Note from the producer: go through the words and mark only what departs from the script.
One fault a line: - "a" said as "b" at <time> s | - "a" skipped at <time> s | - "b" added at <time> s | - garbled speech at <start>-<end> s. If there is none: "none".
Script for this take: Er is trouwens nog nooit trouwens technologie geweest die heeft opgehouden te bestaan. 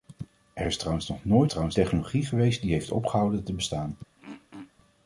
none